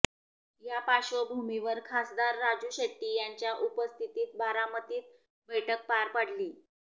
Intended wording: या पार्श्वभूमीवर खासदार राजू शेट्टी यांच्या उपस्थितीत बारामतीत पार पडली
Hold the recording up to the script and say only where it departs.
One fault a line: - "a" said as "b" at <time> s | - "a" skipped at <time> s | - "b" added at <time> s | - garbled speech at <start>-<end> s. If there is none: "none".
- "बैठक" added at 5.5 s